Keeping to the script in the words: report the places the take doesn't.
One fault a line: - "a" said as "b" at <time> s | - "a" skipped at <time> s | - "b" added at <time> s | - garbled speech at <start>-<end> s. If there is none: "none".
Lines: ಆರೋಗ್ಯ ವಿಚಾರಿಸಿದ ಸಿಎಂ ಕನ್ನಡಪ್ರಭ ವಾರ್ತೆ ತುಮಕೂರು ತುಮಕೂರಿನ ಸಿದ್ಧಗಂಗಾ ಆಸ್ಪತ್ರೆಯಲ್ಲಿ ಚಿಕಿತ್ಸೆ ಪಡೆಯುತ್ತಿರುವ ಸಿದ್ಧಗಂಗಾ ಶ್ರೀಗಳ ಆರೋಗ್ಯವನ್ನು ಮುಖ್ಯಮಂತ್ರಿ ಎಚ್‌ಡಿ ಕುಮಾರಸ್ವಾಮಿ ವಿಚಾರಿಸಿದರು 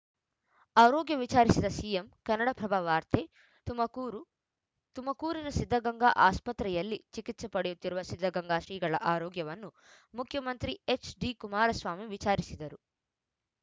none